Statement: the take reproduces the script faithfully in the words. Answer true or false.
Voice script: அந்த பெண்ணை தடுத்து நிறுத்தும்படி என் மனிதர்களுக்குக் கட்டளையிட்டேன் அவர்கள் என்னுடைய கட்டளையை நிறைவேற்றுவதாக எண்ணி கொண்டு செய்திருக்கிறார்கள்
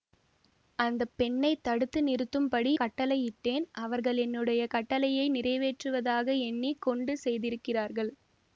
false